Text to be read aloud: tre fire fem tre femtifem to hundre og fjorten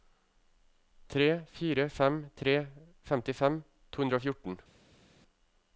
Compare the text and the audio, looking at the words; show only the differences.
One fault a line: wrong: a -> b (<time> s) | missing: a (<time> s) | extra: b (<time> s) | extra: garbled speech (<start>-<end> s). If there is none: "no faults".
no faults